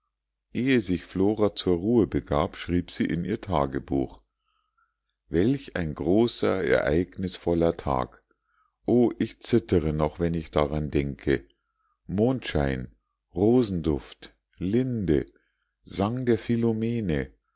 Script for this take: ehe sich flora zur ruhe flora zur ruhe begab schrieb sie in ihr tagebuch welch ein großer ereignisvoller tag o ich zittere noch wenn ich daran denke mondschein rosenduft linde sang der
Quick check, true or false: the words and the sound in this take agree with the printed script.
false